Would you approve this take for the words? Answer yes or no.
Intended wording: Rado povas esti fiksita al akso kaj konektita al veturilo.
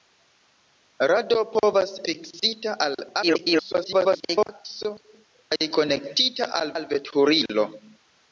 no